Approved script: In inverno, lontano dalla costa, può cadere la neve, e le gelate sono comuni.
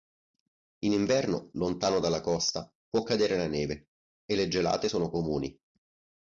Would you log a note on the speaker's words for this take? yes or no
no